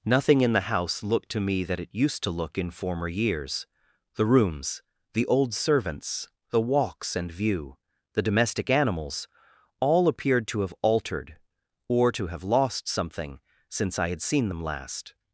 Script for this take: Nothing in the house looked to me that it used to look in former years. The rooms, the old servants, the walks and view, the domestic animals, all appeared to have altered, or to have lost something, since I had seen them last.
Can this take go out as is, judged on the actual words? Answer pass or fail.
pass